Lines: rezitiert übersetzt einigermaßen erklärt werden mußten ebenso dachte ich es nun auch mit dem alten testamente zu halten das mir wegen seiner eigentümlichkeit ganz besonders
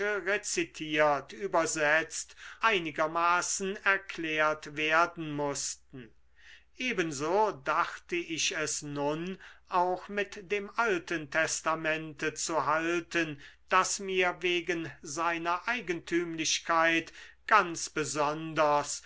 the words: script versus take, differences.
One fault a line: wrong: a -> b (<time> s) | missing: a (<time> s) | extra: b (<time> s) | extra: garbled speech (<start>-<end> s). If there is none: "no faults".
no faults